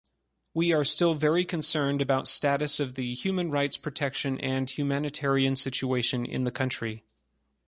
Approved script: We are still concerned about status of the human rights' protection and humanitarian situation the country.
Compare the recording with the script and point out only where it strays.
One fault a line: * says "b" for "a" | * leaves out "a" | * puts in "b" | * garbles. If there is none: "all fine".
* puts in "very"
* puts in "in"